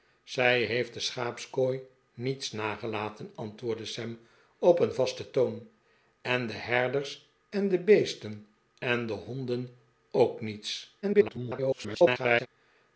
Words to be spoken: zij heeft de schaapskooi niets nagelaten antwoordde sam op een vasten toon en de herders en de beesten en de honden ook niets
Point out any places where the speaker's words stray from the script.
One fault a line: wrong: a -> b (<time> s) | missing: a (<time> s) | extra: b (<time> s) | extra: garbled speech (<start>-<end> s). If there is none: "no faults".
extra: garbled speech (11.0-12.5 s)